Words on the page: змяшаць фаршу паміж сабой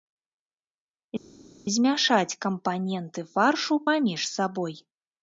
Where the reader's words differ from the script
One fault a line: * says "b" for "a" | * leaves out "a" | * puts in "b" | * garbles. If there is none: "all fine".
* puts in "кампаненты"